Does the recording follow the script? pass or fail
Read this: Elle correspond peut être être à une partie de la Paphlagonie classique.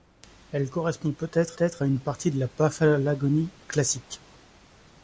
pass